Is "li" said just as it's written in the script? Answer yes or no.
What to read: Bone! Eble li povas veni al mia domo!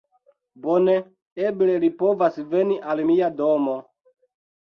yes